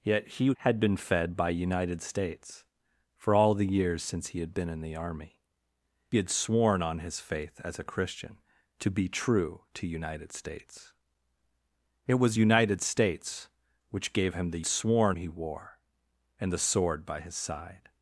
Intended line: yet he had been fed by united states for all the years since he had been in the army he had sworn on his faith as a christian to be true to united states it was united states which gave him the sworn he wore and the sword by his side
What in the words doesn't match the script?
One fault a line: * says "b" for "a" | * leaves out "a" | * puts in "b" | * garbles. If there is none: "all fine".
all fine